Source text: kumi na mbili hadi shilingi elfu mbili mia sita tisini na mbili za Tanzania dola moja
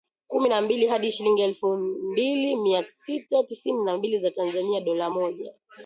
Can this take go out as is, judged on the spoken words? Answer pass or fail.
pass